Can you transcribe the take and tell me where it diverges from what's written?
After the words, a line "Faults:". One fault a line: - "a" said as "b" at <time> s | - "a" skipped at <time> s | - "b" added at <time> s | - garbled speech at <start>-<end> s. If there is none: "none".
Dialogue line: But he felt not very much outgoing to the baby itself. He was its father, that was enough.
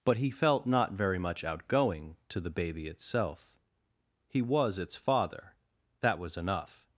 But he felt not very much outgoing to the baby itself. He was its father, that was enough.
Faults:
none